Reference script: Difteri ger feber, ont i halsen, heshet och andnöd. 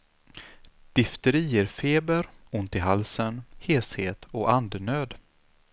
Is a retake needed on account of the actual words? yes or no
no